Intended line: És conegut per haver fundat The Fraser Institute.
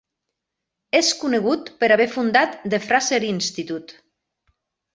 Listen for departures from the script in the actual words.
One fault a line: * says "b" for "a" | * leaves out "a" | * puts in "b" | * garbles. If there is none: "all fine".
all fine